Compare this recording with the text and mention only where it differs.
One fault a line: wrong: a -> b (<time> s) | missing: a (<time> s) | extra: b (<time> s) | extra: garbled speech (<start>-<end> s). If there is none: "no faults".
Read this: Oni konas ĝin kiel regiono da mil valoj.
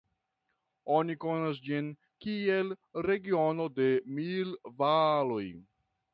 wrong: da -> de (3.8 s)